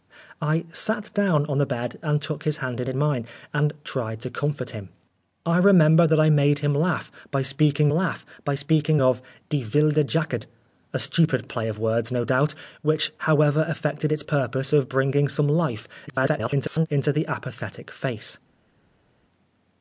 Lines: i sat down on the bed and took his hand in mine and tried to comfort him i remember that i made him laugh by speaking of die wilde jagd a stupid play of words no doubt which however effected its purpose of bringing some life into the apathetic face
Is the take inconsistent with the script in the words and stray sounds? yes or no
yes